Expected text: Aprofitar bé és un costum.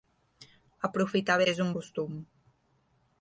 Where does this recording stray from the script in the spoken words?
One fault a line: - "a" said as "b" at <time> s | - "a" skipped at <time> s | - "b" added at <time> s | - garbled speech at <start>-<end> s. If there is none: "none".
none